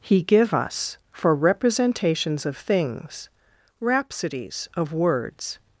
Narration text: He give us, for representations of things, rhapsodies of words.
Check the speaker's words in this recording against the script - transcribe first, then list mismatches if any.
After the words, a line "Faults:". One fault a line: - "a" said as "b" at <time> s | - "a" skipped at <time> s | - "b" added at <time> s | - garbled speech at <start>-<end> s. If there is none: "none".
He give us, for representations of things, rhapsodies of words.
Faults:
none